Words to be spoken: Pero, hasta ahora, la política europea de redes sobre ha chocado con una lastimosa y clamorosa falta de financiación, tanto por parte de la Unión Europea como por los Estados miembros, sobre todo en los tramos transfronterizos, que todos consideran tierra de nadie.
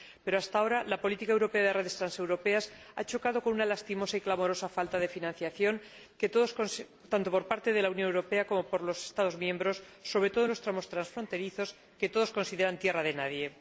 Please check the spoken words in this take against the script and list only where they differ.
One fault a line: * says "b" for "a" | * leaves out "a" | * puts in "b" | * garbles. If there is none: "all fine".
* says "transeuropeas" for "sobre"